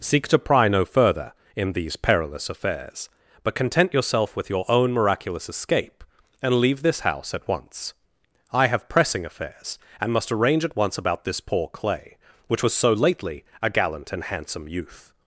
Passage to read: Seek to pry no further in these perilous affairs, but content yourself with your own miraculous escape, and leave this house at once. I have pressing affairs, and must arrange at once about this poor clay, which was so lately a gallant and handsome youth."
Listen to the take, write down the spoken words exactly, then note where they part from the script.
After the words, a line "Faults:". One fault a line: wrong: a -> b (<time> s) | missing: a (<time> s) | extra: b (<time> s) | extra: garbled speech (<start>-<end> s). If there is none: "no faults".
Seek to pry no further in these perilous affairs, but content yourself with your own miraculous escape, and leave this house at once. I have pressing affairs, and must arrange at once about this poor clay, which was so lately a gallant and handsome youth."
Faults:
no faults